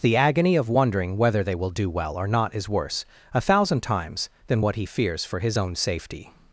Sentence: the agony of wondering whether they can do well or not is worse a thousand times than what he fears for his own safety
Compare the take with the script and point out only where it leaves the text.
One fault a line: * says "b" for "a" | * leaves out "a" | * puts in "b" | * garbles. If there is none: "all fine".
* says "will" for "can"